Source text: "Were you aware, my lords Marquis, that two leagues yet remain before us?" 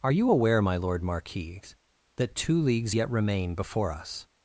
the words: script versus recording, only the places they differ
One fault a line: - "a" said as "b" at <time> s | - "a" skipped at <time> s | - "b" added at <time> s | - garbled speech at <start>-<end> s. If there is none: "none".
- "Were" said as "Are" at 0.0 s
- "lords" said as "lord" at 0.8 s